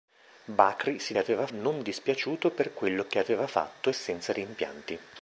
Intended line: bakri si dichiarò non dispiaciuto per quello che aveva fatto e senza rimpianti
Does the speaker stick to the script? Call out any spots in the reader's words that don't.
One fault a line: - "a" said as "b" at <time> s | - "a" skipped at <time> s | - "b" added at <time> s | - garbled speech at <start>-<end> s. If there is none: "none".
- "dichiarò" said as "aveva" at 1.2 s